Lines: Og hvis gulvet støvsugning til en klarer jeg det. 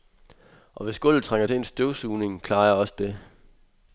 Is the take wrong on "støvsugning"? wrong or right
wrong